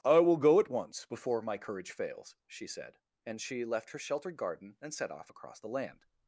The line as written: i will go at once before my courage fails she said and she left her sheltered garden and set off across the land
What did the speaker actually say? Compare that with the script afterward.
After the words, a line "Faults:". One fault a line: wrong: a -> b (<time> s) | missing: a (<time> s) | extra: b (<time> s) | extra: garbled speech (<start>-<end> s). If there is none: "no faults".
i will go at once before my courage fails she said and she left her sheltered garden and set off across the land
Faults:
no faults